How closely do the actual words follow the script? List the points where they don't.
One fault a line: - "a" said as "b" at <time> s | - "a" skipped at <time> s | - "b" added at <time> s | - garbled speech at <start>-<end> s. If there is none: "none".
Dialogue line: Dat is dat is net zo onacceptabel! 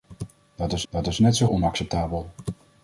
none